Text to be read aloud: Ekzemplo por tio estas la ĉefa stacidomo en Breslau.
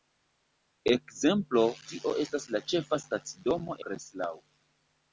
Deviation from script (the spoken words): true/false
true